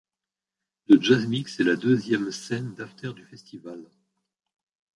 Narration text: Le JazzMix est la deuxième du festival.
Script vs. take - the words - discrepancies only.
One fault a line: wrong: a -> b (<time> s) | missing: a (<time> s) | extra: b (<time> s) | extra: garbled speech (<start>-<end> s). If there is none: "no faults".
extra: scène d'after (2.3 s)